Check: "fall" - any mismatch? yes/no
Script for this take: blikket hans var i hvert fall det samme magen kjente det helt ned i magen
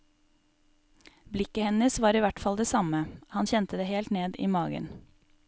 no